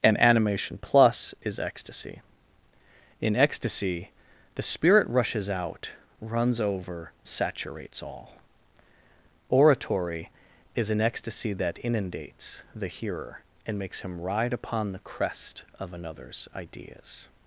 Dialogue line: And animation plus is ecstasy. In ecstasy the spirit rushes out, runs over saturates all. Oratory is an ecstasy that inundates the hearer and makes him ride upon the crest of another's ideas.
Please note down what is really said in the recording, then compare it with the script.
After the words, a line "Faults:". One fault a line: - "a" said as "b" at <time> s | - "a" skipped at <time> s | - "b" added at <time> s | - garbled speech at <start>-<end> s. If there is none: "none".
And animation plus is ecstasy. In ecstasy the spirit rushes out, runs over saturates all. Oratory is an ecstasy that inundates the hearer and makes him ride upon the crest of another's ideas.
Faults:
none